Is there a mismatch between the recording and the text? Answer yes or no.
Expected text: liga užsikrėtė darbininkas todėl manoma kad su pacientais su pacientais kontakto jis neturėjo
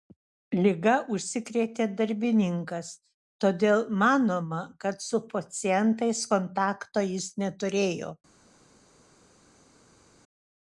yes